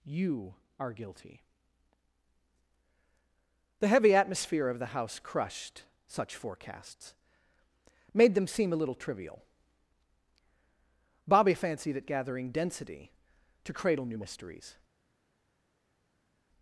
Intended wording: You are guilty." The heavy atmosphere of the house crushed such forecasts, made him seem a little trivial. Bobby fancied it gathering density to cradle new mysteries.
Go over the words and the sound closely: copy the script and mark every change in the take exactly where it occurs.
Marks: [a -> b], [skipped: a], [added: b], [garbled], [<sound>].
You are guilty." The heavy atmosphere of the house crushed such forecasts, made [him -> them] seem a little trivial. Bobby fancied it gathering density to cradle new mysteries.